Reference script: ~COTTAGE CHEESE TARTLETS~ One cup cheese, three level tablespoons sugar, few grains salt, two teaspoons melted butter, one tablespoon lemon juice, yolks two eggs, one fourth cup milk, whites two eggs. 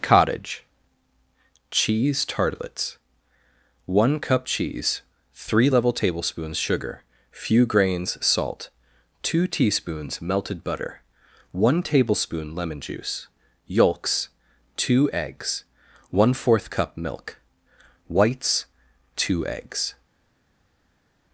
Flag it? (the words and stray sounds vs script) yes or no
no